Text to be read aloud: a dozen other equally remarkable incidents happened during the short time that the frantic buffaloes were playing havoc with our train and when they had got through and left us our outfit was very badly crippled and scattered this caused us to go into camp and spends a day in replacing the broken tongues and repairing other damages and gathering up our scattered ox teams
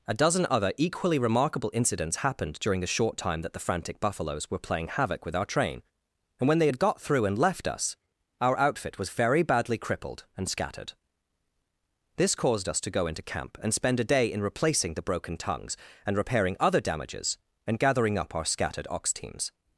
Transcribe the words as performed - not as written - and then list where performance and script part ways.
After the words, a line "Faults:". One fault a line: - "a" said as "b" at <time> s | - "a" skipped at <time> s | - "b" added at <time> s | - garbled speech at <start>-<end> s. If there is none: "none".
a dozen other equally remarkable incidents happened during the short time that the frantic buffaloes were playing havoc with our train and when they had got through and left us our outfit was very badly crippled and scattered this caused us to go into camp and spend a day in replacing the broken tongues and repairing other damages and gathering up our scattered ox teams
Faults:
- "spends" said as "spend" at 13.7 s